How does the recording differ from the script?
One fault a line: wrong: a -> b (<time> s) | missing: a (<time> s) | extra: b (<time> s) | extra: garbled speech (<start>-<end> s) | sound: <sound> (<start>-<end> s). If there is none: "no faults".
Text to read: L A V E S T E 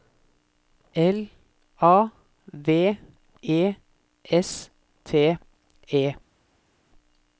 no faults